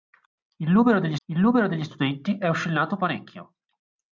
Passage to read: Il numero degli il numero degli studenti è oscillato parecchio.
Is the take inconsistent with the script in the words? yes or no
no